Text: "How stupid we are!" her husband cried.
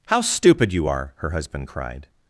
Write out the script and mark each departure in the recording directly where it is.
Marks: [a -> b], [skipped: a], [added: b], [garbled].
"How stupid [we -> you] are!" her husband cried.